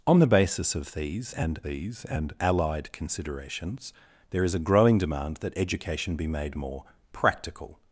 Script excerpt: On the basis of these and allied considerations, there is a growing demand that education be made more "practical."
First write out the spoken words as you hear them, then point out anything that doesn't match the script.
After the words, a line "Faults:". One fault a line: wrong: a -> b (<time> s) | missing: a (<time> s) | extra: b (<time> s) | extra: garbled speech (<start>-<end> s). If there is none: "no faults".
On the basis of these and these and allied considerations, there is a growing demand that education be made more "practical."
Faults:
extra: these and (1.6 s)